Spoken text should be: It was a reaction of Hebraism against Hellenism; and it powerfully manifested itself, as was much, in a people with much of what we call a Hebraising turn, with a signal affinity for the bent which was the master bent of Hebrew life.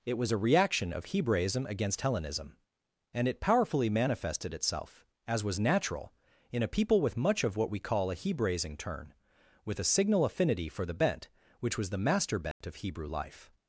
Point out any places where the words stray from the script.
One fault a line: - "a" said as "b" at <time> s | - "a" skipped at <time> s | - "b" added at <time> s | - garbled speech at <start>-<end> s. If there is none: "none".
- "much" said as "natural" at 5.6 s